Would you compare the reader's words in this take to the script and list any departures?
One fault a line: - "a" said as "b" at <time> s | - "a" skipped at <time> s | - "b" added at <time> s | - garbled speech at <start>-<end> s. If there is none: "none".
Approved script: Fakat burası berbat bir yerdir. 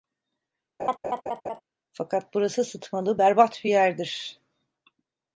- "sıtmalı" added at 2.6 s